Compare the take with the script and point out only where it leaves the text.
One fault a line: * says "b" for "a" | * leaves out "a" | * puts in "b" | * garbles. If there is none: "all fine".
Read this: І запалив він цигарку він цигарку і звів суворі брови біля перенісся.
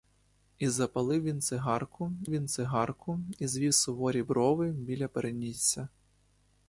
all fine